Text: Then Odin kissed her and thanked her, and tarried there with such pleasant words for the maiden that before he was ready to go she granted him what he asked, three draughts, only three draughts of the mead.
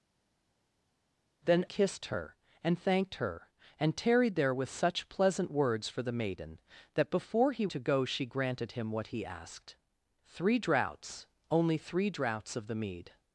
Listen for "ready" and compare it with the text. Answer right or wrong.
wrong